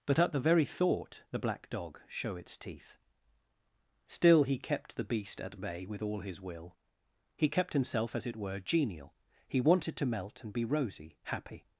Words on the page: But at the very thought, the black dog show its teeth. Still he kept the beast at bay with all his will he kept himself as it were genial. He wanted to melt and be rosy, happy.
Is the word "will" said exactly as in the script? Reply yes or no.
yes